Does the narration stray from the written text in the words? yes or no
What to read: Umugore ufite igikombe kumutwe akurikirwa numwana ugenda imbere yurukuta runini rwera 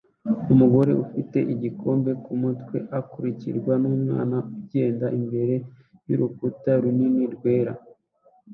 no